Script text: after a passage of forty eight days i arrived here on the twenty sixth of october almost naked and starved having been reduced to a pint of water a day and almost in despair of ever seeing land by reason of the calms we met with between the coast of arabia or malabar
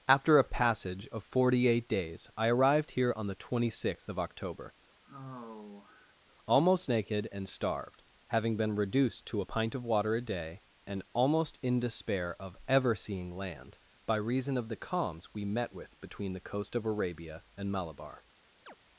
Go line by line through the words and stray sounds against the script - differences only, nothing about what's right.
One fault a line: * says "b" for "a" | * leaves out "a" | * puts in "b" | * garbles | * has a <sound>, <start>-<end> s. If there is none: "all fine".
* has a sigh, 5.0-6.1 s
* says "and" for "or"
* has a chirp, 18.7-18.8 s